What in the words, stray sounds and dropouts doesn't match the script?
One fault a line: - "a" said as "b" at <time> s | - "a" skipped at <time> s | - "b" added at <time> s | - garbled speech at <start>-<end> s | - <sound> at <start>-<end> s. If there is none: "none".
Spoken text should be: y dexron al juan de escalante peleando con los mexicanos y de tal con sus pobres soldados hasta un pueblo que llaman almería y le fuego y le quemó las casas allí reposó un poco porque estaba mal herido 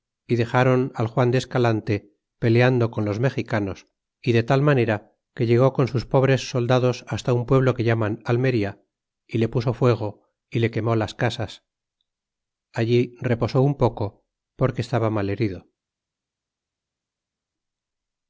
- "manera que llegó" added at 4.6 s
- "puso" added at 9.5 s